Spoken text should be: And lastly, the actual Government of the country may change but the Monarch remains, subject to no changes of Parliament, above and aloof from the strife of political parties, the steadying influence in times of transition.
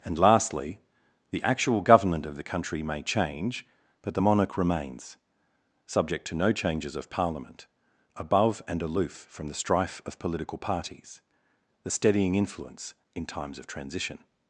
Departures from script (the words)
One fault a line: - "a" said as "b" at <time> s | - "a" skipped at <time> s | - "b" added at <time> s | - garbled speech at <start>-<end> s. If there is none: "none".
none